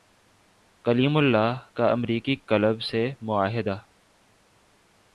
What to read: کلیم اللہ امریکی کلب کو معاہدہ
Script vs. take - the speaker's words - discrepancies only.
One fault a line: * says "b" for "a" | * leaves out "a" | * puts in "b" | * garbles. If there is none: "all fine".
* puts in "کا"
* says "سے" for "کو"